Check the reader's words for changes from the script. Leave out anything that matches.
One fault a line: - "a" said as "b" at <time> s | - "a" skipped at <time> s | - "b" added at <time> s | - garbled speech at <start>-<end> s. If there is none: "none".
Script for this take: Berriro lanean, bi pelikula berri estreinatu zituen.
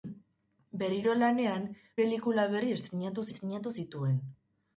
- "bi" skipped at 1.7 s
- "estreinatu" added at 3.3 s